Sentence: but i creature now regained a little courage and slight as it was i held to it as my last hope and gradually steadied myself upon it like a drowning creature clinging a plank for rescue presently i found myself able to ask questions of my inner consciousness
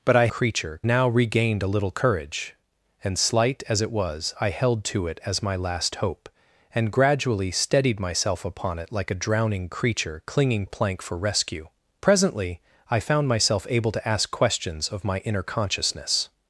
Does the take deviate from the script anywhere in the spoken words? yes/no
no